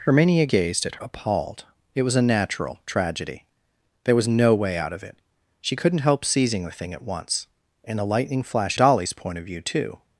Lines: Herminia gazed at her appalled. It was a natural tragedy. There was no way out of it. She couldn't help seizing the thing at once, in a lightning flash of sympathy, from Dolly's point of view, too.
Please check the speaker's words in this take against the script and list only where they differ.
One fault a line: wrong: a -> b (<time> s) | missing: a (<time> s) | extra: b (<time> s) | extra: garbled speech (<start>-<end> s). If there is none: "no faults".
missing: her (1.0 s)
missing: of sympathy from (8.8 s)